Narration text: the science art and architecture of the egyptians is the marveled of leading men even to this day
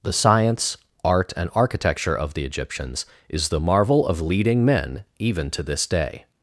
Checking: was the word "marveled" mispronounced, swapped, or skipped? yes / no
yes